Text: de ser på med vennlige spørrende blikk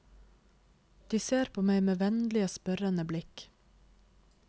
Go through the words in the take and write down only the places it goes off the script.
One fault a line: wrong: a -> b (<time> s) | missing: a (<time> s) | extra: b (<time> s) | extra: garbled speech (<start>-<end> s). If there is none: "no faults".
extra: meg (1.7 s)